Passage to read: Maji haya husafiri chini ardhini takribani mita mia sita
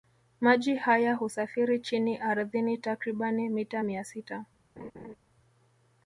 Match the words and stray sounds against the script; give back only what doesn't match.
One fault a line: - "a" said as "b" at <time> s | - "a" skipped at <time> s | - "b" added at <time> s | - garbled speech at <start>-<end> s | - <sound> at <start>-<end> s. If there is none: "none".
- laugh at 4.8-5.2 s